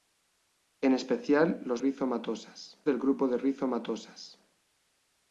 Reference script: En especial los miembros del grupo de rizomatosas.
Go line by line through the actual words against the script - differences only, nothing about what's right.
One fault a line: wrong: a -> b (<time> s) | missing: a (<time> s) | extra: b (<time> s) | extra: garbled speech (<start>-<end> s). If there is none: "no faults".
wrong: miembros -> rizomatosas (1.8 s)